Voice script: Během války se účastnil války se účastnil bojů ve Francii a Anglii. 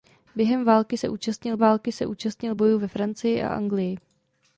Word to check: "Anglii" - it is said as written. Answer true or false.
true